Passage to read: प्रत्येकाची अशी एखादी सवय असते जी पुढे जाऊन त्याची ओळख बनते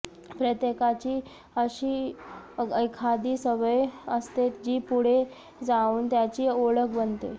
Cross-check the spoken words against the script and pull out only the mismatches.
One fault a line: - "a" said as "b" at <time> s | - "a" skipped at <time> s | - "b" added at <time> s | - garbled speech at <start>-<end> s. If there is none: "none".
none